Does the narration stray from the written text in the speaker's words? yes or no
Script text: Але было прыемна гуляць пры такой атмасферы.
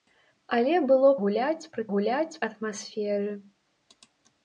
yes